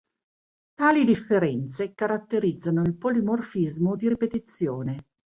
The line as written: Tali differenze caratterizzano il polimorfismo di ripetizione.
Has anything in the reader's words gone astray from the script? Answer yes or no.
no